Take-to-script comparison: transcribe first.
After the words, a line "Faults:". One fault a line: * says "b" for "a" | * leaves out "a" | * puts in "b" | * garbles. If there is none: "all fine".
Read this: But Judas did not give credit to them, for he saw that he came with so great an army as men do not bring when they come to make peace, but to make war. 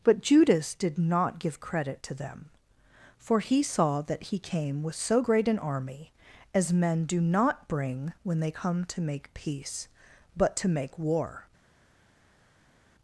But Judas did not give credit to them, for he saw that he came with so great an army as men do not bring when they come to make peace, but to make war.
Faults:
all fine